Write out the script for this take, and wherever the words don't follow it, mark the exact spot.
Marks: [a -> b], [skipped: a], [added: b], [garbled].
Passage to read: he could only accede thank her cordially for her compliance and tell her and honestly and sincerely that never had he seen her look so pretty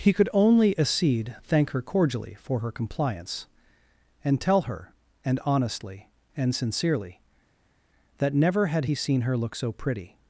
he could only accede thank her cordially for her compliance and tell her and honestly and sincerely that never had he seen her look so pretty